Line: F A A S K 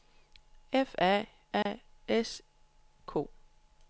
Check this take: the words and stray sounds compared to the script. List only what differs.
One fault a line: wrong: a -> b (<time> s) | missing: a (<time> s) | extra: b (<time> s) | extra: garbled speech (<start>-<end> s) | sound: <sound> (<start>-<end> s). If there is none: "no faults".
sound: dropout (1.6-1.7 s)